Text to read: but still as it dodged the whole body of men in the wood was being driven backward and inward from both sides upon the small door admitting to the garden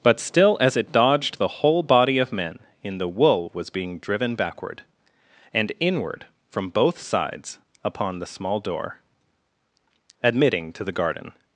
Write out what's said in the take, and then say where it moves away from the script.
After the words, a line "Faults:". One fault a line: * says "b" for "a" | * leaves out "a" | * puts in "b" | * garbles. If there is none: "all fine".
but still as it dodged the whole body of men in the wool was being driven backward and inward from both sides upon the small door admitting to the garden
Faults:
* says "wool" for "wood"